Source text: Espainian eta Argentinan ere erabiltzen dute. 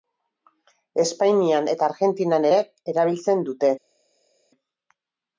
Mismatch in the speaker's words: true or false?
false